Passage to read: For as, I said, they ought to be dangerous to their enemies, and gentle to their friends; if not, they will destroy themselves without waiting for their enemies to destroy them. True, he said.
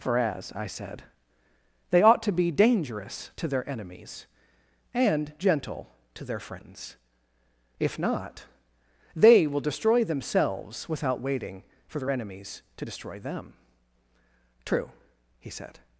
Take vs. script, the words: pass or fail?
pass